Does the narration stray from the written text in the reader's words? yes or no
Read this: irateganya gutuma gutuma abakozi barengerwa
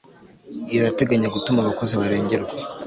yes